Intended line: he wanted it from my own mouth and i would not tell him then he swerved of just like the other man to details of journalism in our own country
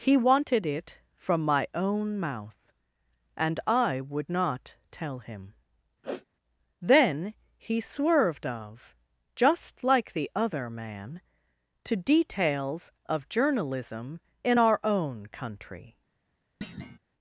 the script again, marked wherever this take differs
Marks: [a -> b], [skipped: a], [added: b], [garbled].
he wanted it from my own mouth and i would not tell him then he swerved of just like the other man to details of journalism in our own country